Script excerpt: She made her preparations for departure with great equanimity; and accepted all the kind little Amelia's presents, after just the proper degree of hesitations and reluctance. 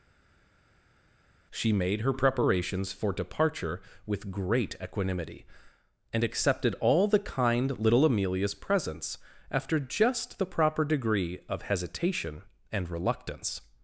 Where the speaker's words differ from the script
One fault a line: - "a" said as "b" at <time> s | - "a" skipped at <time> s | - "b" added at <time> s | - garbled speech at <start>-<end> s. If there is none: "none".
- "hesitations" said as "hesitation" at 11.6 s